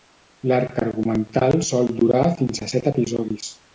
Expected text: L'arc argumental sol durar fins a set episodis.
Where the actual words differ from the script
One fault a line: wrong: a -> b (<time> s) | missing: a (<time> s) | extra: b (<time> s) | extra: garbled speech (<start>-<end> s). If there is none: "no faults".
no faults